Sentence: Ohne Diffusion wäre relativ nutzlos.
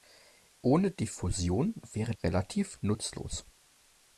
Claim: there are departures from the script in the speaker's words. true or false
false